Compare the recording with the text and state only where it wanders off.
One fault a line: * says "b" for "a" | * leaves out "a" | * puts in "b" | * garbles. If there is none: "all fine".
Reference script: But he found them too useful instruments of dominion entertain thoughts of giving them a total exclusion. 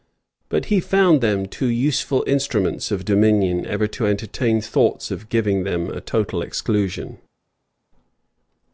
* puts in "ever to"